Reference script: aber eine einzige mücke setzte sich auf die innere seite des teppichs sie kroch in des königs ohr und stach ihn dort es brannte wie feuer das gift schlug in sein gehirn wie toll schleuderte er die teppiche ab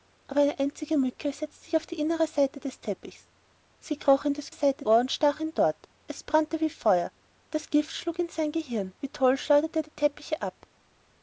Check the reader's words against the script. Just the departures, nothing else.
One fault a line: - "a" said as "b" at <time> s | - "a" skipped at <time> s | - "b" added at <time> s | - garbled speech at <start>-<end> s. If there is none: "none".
- "königs" said as "seite" at 4.5 s